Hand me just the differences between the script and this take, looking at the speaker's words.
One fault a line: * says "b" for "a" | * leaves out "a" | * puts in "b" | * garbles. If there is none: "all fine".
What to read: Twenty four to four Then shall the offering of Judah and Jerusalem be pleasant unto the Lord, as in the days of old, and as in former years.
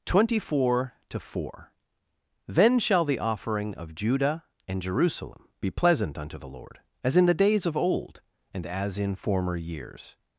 all fine